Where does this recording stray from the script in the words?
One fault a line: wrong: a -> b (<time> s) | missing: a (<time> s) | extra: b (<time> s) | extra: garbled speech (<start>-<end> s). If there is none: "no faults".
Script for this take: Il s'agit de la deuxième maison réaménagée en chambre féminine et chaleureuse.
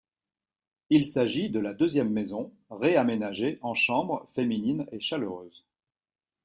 no faults